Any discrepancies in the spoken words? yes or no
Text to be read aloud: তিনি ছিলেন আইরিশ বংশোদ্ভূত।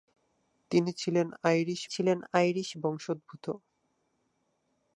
yes